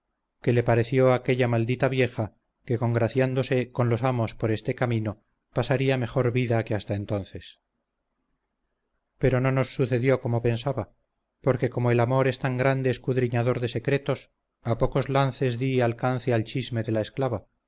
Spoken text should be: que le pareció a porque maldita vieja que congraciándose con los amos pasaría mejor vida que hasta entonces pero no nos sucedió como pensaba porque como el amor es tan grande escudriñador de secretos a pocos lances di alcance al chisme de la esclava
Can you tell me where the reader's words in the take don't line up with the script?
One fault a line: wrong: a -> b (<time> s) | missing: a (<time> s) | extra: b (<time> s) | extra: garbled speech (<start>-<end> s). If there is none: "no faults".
wrong: porque -> aquella (1.1 s)
extra: por este camino (4.3 s)